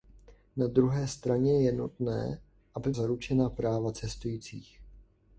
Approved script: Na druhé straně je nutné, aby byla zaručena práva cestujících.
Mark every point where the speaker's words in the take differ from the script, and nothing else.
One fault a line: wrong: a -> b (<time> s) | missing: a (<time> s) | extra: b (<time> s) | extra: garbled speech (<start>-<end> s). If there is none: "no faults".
missing: byla (2.9 s)